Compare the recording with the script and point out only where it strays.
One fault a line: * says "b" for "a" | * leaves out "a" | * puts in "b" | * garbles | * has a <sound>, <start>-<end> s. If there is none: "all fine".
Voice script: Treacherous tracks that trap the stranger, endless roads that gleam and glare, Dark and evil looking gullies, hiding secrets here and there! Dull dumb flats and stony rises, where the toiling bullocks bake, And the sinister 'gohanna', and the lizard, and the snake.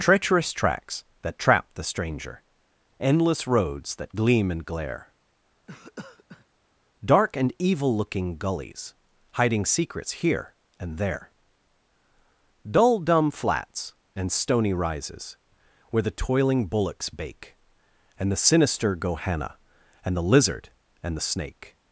* has a cough, 5.7-6.5 s